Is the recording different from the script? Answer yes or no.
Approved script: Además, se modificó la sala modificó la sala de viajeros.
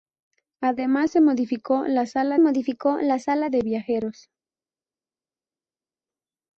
no